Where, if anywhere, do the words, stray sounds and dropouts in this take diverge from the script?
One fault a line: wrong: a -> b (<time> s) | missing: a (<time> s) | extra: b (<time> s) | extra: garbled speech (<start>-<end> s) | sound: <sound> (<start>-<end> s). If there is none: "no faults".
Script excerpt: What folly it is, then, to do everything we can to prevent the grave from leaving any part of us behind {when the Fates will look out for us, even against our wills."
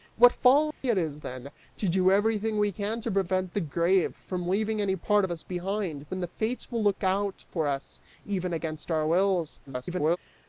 sound: dropout (0.7-0.8 s)
extra: garbled speech (9.7-10.2 s)